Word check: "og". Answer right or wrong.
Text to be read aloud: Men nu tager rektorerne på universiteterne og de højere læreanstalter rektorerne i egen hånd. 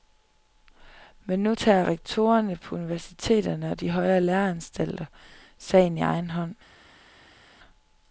right